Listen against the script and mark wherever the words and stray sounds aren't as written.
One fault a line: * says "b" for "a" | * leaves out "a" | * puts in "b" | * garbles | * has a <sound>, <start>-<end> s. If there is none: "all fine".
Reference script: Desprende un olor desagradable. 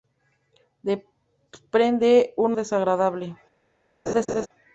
* leaves out "olor"
* has a laugh, 4.1-4.5 s